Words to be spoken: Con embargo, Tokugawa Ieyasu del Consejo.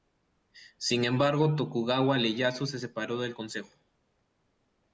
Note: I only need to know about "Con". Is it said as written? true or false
false